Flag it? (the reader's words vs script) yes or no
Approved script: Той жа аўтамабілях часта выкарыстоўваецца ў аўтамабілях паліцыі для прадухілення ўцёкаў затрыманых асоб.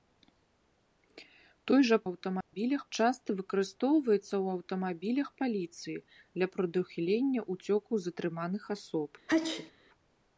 no